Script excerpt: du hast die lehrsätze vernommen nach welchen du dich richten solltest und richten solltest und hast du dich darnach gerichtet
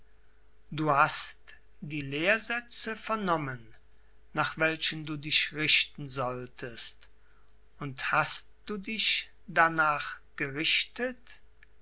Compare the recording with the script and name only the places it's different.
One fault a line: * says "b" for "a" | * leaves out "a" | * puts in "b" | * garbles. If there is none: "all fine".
* leaves out "richten solltest und"